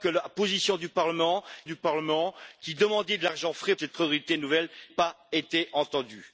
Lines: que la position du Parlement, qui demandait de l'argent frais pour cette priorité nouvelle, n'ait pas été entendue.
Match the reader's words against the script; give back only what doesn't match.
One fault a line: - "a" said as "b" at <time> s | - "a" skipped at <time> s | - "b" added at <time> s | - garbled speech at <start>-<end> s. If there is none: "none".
- "du Parlement" added at 1.6 s
- "pour" skipped at 3.7 s
- "n'ait" skipped at 4.7 s